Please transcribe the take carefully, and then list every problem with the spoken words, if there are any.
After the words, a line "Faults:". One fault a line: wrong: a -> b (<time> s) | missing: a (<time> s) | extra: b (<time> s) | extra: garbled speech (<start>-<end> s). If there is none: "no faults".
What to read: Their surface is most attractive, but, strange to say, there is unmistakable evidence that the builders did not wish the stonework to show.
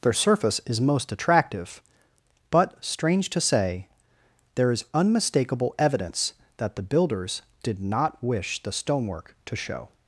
Their surface is most attractive, but, strange to say, there is unmistakable evidence that the builders did not wish the stonework to show.
Faults:
no faults